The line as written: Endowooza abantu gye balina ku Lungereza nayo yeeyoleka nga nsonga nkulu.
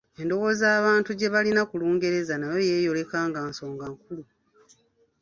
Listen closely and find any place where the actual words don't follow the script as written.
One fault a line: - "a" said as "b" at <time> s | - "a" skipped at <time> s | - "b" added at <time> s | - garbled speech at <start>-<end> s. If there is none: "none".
none